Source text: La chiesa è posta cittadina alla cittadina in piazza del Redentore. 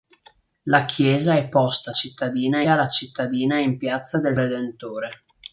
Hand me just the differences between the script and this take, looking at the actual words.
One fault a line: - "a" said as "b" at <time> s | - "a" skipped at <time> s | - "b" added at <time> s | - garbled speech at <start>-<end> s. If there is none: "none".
none